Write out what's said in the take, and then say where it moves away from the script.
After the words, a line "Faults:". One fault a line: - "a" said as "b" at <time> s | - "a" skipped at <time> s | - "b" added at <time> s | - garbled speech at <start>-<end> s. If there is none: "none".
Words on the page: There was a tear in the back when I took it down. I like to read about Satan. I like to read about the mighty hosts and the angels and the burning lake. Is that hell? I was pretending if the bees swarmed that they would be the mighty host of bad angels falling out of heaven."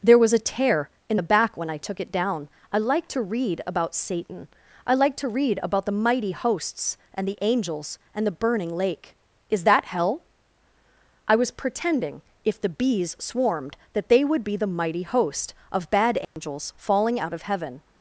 There was a tear in the back when I took it down. I like to read about Satan. I like to read about the mighty hosts and the angels and the burning lake. Is that hell? I was pretending if the bees swarmed that they would be the mighty host of bad angels falling out of heaven."
Faults:
none